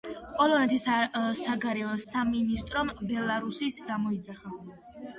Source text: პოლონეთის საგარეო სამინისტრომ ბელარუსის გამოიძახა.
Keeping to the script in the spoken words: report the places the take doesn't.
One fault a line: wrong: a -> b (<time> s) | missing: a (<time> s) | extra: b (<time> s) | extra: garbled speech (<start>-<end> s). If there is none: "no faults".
no faults